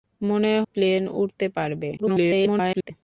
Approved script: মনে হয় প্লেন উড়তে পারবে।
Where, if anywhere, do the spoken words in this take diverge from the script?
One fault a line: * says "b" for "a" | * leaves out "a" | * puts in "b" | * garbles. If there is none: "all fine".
* leaves out "হয়"
* garbles